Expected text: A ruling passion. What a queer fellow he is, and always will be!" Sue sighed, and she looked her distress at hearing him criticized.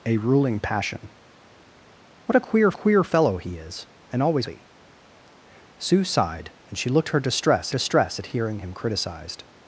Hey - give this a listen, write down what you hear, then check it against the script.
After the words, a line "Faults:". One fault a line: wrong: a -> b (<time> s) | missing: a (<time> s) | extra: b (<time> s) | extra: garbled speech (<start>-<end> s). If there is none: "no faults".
A ruling passion. What a queer queer fellow he is, and always be!" Sue sighed, and she looked her distress distress at hearing him criticized.
Faults:
extra: queer (2.7 s)
missing: will (4.5 s)
extra: distress (7.7 s)